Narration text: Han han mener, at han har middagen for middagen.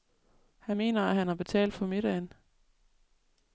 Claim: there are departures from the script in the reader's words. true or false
true